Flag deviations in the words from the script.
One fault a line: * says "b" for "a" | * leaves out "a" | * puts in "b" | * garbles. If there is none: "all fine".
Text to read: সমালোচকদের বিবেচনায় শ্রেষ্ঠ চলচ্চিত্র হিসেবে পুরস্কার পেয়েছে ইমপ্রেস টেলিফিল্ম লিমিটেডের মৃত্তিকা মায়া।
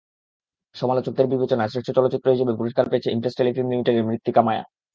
all fine